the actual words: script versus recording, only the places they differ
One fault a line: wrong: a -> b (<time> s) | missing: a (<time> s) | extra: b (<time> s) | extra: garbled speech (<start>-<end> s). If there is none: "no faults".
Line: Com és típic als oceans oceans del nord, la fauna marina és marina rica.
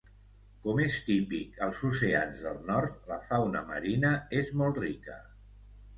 missing: oceans (2.4 s)
wrong: marina -> molt (4.6 s)